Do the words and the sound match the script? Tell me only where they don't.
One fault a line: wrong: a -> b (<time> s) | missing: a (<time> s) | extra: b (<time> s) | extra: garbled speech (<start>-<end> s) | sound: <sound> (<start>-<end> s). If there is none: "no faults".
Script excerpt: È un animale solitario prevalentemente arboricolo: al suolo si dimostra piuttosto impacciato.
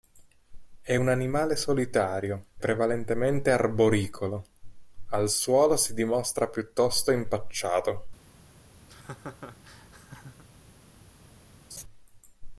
sound: laugh (8.9-10.4 s)
sound: laugh (11.7-11.8 s)